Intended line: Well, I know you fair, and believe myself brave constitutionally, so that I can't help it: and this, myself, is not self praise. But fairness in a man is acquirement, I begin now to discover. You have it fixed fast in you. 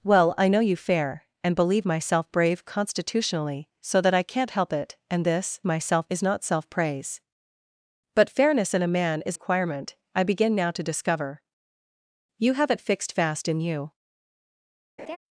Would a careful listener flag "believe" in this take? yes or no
no